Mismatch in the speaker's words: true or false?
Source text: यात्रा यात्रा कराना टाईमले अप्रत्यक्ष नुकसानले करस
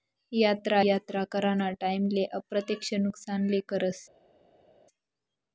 false